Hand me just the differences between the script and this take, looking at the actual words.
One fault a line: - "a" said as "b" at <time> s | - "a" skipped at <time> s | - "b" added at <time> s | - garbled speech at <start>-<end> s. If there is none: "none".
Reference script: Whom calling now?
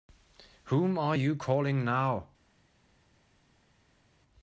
- "are you" added at 1.0 s